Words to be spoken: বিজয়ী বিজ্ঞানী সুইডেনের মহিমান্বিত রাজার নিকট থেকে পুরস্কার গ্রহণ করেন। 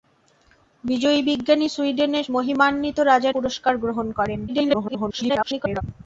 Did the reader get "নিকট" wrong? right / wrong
wrong